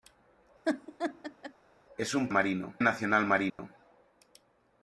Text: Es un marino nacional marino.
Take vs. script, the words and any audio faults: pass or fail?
fail